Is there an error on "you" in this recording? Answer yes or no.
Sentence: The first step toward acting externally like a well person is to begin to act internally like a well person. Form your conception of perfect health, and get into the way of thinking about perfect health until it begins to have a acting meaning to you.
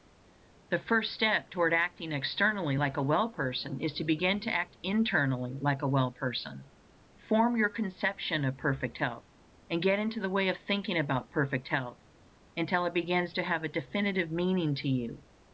no